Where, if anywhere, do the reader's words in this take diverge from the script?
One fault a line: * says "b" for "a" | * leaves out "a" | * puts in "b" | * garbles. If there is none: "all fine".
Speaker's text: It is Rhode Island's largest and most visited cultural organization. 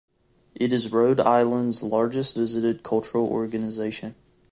* leaves out "and most"